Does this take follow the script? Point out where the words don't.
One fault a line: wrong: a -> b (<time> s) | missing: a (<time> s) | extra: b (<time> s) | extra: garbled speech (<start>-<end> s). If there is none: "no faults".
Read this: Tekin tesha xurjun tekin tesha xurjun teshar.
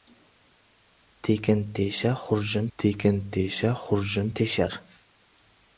no faults